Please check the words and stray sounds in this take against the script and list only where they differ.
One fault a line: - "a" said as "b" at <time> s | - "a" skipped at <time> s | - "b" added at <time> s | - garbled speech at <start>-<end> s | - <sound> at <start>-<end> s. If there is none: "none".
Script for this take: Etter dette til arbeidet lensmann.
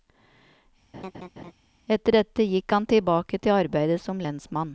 - laugh at 0.9-1.5 s
- "gikk han tilbake" added at 2.4 s
- "som" added at 4.0 s